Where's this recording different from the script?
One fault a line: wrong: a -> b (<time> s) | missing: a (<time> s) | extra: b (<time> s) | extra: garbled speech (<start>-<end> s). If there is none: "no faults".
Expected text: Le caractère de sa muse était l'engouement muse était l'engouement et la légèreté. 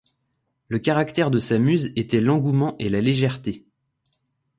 missing: muse était l'engouement (2.7 s)